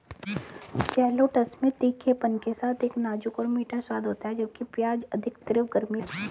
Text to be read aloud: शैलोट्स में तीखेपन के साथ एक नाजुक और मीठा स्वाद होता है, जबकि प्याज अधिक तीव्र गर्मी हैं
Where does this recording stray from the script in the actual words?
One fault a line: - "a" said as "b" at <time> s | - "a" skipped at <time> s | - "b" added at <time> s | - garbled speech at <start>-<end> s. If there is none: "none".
none